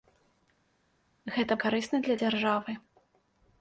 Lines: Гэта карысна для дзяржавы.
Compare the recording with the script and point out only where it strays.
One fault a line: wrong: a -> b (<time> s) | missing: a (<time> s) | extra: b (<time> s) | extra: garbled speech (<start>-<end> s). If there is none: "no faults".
no faults